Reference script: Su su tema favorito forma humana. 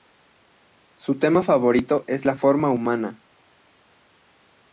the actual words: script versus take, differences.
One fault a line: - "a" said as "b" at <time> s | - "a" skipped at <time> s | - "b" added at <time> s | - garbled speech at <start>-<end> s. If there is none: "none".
- "su" skipped at 1.2 s
- "es la" added at 2.1 s